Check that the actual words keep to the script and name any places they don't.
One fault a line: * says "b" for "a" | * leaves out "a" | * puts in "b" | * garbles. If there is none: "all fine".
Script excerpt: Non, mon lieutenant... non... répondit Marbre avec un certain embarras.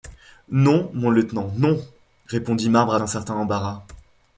* leaves out "avec"